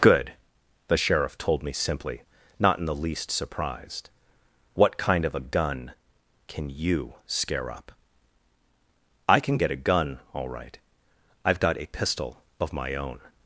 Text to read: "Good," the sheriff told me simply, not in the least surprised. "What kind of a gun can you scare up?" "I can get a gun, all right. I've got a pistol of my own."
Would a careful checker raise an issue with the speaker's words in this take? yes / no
no